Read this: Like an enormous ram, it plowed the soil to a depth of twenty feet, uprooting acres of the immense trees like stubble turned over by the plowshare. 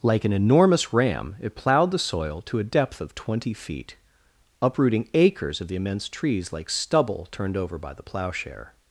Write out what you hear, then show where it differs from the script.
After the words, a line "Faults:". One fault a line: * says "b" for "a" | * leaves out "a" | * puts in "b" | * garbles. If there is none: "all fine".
Like an enormous ram, it plowed the soil to a depth of twenty feet, uprooting acres of the immense trees like stubble turned over by the plowshare.
Faults:
all fine